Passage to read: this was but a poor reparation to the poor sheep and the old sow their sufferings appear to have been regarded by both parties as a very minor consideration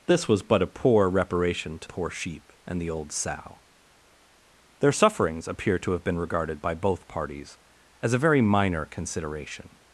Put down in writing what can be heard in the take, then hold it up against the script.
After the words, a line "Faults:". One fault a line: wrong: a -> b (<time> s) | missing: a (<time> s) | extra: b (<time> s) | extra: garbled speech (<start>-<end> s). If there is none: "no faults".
this was but a poor reparation to poor sheep and the old sow their sufferings appear to have been regarded by both parties as a very minor consideration
Faults:
missing: the (1.9 s)